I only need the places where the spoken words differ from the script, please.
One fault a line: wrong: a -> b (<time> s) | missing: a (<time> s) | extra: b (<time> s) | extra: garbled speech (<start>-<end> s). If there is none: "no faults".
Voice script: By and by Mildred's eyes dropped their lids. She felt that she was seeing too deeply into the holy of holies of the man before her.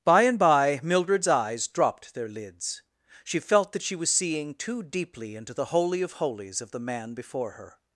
no faults